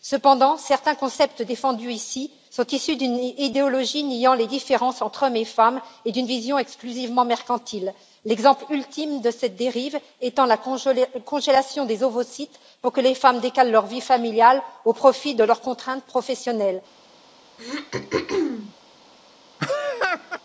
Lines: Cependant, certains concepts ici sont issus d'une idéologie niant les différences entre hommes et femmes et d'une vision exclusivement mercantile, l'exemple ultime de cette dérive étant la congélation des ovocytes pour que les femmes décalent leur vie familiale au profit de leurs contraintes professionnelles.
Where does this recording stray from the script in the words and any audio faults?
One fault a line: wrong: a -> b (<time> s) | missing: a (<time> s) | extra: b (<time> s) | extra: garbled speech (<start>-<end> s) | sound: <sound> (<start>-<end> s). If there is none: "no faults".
extra: défendus (1.4 s)
sound: throat clearing (17.6-18.7 s)
sound: laugh (19.6-20.4 s)